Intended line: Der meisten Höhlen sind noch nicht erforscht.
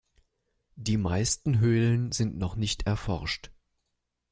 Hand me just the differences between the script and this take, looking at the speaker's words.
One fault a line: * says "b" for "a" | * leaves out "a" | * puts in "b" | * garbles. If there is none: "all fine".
* says "Die" for "Der"